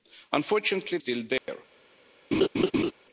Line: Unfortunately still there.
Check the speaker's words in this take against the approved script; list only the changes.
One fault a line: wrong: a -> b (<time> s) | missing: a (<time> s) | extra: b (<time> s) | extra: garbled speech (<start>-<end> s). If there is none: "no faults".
no faults